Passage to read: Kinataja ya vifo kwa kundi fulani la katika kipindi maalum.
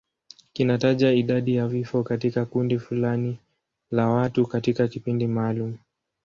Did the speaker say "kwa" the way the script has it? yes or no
no